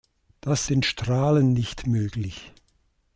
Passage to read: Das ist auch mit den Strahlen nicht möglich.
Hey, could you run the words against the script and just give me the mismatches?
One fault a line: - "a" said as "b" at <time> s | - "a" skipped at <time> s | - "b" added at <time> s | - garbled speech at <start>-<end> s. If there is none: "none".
- "ist auch mit" skipped at 0.7 s